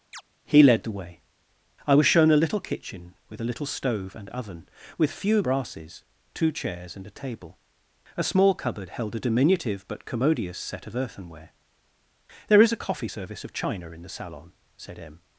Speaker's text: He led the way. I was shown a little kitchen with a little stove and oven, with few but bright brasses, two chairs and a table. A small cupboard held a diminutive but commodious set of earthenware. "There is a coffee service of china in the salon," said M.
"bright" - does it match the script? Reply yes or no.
no